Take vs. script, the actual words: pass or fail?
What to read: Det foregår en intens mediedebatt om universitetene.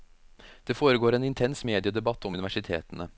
pass